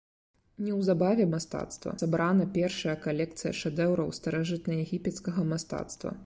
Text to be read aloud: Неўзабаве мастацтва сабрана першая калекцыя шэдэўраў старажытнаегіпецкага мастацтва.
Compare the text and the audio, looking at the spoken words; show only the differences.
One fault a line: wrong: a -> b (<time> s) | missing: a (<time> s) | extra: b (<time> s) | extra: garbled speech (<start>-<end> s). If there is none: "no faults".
no faults